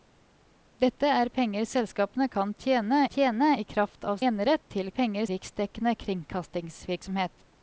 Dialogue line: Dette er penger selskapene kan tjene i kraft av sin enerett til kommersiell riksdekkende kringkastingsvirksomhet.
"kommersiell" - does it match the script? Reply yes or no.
no